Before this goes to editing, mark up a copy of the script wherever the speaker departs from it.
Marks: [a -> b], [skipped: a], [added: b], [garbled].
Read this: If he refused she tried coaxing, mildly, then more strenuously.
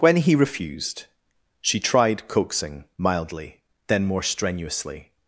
[If -> When] he refused she tried coaxing, mildly, then more strenuously.